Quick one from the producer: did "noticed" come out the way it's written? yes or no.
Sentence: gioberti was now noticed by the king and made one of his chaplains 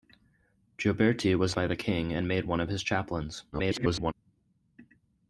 no